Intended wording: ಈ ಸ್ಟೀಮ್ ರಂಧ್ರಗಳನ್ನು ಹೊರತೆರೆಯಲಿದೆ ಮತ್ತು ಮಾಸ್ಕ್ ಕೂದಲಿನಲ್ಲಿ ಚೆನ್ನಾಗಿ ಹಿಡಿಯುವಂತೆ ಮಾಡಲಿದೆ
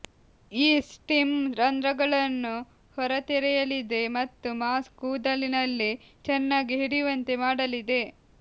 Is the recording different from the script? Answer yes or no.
no